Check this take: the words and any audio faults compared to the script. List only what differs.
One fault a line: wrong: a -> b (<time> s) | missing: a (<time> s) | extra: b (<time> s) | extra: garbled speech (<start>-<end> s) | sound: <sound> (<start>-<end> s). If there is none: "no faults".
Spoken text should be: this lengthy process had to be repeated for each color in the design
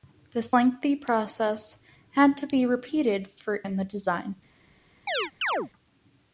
missing: each color (3.6 s)
sound: chirp (5.1-5.7 s)